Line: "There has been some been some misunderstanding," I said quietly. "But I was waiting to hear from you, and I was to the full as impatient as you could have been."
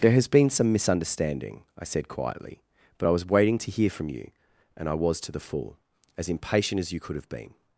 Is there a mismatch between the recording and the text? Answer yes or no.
yes